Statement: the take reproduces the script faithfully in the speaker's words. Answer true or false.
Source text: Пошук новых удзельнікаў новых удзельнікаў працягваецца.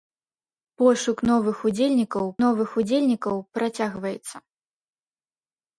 true